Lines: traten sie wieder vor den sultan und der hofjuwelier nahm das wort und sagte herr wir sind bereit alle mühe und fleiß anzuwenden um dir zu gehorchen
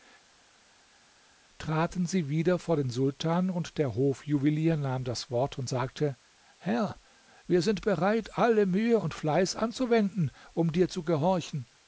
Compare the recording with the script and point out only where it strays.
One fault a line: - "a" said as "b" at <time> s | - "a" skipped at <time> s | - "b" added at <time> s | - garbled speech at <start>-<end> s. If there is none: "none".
none